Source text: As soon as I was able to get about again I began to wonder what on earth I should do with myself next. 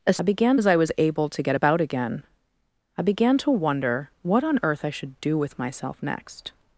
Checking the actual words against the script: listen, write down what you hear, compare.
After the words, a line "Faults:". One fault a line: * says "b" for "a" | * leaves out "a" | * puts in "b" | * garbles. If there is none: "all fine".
As began as I was able to get about again I began to wonder what on earth I should do with myself next.
Faults:
* says "began" for "soon"